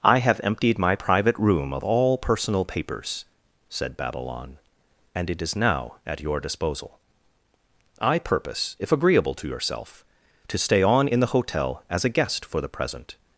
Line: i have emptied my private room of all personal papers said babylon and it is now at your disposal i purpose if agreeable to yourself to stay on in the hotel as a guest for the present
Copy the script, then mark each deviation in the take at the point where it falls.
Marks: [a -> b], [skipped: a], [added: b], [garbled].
i have emptied my private room of all personal papers said babylon and it is now at your disposal i purpose if agreeable to yourself to stay on in the hotel as a guest for the present